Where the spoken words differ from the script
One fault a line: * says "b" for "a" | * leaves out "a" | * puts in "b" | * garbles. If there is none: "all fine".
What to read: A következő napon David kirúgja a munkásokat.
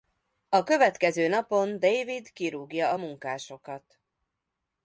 all fine